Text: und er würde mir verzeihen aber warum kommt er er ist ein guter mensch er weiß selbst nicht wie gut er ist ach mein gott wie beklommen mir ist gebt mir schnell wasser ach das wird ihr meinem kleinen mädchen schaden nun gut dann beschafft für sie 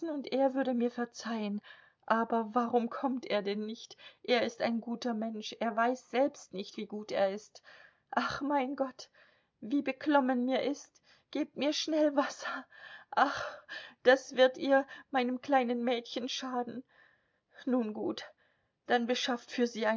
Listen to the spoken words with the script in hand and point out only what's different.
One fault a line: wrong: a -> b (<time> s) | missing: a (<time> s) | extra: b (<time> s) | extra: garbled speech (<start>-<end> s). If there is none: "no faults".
extra: denn nicht (3.4 s)